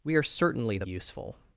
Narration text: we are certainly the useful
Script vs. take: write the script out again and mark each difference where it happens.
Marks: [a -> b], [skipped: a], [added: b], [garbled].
we are certainly the useful